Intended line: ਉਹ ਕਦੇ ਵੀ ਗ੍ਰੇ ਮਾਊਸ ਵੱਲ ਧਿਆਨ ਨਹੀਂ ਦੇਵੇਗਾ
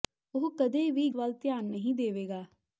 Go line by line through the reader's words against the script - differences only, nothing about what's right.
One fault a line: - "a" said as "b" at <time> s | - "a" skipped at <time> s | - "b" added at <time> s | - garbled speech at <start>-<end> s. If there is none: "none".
- "ਗ੍ਰੇ ਮਾਊਸ" skipped at 1.1 s